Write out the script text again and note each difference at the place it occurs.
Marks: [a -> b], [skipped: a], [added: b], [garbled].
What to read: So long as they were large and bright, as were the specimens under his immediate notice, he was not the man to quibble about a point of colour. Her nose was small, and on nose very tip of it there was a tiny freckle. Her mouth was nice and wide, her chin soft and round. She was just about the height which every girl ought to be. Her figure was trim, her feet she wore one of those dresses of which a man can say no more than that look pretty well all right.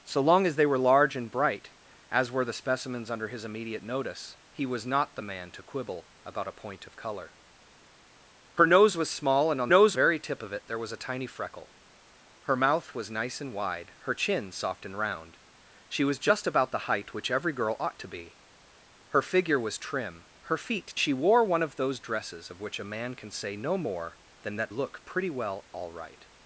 So long as they were large and bright, as were the specimens under his immediate notice, he was not the man to quibble about a point of colour. Her nose was small, and on nose very tip of it there was a tiny freckle. Her mouth was nice and wide, her chin soft and round. She was just about the height which every girl ought to be. Her figure was trim, her feet she wore one of those dresses of which a man can say no more than that look pretty well all right.